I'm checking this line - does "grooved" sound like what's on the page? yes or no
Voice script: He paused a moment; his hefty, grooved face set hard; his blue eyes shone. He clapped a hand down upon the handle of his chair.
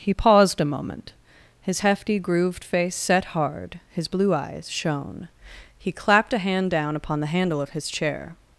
yes